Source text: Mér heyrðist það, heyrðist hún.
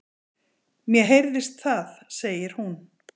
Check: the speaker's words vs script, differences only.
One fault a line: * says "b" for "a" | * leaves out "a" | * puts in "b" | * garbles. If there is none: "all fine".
* says "segir" for "heyrðist"